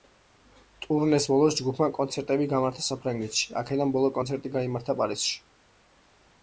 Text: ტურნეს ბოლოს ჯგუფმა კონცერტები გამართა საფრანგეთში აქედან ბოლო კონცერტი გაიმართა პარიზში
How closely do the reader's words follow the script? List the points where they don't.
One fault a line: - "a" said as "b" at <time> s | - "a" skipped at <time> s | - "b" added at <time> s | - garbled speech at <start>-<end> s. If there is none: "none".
none